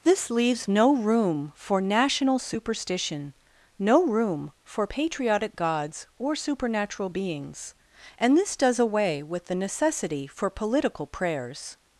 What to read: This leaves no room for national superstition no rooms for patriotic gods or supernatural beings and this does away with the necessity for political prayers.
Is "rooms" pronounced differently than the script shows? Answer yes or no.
yes